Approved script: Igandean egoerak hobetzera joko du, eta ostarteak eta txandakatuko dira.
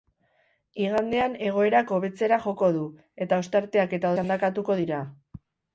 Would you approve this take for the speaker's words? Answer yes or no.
yes